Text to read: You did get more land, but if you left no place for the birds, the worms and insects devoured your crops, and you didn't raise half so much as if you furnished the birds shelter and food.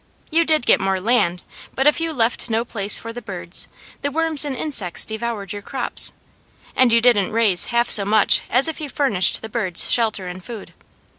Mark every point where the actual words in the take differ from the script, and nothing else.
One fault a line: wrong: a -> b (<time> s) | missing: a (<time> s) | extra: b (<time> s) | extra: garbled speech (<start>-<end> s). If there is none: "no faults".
no faults